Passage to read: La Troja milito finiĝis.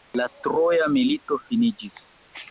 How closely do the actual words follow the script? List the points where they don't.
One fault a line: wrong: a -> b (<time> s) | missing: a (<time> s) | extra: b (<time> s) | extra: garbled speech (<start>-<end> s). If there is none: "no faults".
no faults